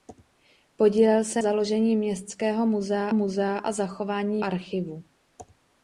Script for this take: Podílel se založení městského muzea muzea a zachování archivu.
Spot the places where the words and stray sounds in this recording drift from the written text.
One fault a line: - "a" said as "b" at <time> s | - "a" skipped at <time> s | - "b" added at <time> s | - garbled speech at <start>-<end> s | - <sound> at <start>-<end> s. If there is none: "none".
none